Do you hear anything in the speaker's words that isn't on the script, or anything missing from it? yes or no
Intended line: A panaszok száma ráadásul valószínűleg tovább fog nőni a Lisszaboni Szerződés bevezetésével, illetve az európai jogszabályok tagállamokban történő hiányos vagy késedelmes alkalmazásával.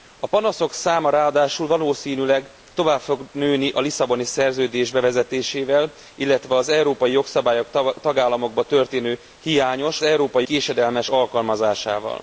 yes